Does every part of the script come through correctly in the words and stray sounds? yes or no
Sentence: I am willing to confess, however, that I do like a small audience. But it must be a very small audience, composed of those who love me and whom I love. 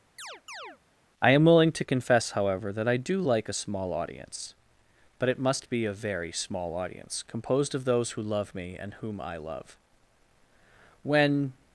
no